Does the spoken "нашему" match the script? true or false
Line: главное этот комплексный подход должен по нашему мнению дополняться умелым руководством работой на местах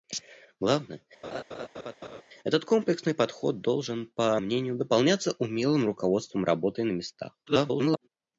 false